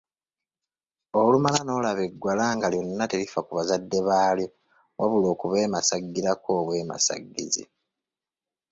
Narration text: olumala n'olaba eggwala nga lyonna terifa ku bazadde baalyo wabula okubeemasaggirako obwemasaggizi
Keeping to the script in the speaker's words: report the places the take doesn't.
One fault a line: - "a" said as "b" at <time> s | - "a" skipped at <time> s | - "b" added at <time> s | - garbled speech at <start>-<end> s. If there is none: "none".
none